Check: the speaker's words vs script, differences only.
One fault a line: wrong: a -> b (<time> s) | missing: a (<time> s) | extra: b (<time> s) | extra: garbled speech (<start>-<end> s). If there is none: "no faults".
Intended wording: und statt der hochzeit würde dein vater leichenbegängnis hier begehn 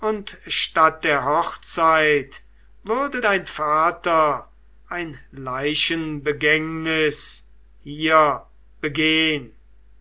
extra: ein (4.9 s)